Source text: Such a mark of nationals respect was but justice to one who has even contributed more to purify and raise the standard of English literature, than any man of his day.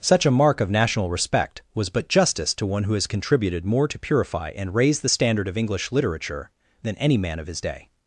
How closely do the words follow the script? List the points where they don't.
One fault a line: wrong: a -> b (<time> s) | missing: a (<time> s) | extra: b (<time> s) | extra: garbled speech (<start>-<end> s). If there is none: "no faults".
wrong: nationals -> national (0.7 s)
missing: even (3.0 s)